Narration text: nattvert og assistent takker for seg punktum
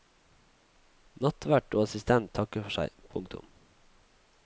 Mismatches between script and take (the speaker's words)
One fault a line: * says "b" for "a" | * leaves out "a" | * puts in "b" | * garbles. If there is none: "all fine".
all fine